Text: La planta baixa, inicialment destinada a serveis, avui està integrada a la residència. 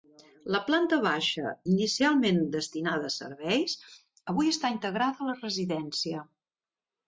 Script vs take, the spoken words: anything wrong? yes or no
no